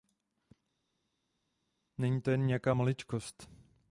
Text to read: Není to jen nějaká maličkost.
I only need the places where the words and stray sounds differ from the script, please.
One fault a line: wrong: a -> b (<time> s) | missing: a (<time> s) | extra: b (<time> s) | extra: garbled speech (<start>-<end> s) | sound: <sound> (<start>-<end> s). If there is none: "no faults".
no faults